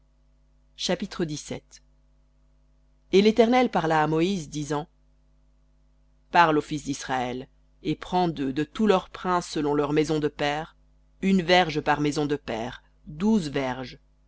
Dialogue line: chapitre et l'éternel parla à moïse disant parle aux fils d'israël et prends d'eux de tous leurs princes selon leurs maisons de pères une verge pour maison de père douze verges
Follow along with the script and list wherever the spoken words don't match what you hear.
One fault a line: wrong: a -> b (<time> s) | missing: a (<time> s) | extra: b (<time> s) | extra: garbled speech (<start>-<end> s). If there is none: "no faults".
wrong: pour -> par (11.8 s)